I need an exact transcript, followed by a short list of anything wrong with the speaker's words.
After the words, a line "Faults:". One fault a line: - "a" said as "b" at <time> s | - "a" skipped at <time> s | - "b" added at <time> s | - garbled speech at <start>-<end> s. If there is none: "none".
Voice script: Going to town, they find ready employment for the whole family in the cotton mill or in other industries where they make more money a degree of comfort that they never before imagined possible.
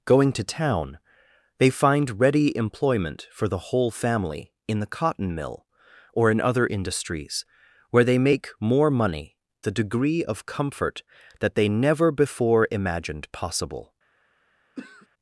Going to town, they find ready employment for the whole family in the cotton mill or in other industries where they make more money a degree of comfort that they never before imagined possible.
Faults:
none